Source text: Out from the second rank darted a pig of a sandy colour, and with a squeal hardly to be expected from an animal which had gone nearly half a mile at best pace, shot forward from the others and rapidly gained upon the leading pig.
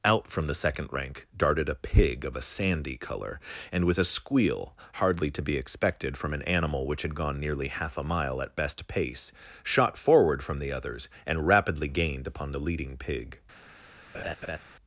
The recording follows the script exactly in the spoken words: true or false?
true